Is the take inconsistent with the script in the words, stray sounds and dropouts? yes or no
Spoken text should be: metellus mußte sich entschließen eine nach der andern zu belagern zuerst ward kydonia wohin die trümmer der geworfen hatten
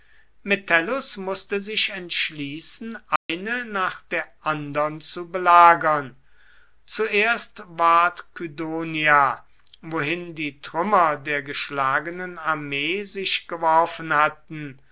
yes